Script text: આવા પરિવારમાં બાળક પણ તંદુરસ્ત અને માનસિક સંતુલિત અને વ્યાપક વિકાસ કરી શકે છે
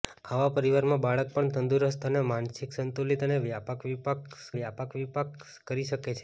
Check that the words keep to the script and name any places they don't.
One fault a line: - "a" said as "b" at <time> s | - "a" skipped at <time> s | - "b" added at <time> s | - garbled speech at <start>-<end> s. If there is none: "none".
- "વ્યાપક વિકાસ" added at 4.5 s